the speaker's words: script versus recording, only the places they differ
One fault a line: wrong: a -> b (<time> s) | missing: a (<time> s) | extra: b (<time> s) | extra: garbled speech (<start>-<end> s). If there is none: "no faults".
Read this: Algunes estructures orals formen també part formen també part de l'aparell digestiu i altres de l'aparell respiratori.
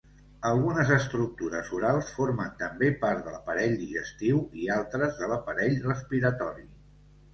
missing: formen també part (3.2 s)